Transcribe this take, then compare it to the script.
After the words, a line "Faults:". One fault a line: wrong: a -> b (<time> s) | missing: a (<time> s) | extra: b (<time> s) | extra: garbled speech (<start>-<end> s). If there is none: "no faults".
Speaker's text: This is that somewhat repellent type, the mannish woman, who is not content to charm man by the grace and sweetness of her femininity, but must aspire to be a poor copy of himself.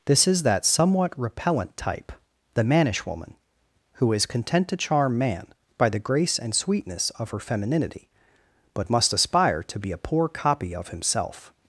This is that somewhat repellent type, the mannish woman, who is content to charm man by the grace and sweetness of her femininity, but must aspire to be a poor copy of himself.
Faults:
missing: not (4.2 s)